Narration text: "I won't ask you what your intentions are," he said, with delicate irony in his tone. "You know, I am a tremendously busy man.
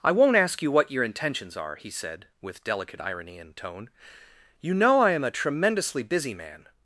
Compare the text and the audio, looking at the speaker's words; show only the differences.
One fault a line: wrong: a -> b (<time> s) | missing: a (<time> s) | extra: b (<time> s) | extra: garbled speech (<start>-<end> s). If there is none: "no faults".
missing: his (3.5 s)